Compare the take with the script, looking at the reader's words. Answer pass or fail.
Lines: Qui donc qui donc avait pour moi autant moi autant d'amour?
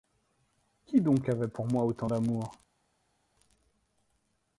fail